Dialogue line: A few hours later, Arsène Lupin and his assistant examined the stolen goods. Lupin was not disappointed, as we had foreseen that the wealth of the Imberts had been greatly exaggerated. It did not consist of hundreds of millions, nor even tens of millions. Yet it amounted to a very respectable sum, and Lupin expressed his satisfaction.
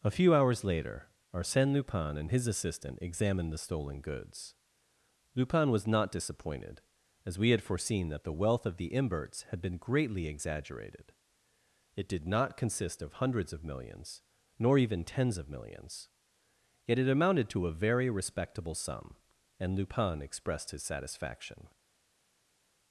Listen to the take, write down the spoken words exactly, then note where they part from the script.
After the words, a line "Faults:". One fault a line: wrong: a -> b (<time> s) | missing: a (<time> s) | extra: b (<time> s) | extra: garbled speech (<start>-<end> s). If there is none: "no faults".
A few hours later, Arsène Lupin and his assistant examined the stolen goods. Lupin was not disappointed, as we had foreseen that the wealth of the Imberts had been greatly exaggerated. It did not consist of hundreds of millions, nor even tens of millions. Yet it amounted to a very respectable sum, and Lupin expressed his satisfaction.
Faults:
no faults